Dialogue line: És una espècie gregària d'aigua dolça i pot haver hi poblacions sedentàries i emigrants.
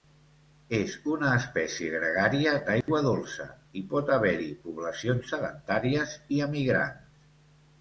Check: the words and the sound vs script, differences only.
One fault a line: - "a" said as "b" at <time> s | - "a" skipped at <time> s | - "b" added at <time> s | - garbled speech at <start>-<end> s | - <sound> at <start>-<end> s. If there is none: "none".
- dropout at 2.8-2.9 s